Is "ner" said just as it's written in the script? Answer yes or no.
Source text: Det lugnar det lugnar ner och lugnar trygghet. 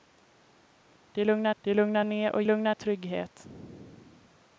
yes